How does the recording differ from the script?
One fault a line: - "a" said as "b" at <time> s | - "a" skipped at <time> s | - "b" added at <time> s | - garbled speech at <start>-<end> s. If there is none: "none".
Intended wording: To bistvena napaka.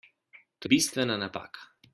none